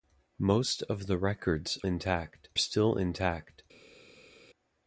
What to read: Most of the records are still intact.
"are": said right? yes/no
no